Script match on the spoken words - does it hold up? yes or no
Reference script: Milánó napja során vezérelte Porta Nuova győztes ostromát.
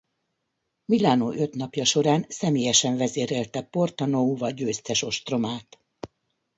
no